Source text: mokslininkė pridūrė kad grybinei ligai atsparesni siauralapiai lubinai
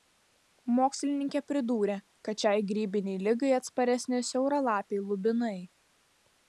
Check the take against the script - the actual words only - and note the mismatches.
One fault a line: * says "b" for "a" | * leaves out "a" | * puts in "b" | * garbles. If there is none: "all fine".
* puts in "šiai"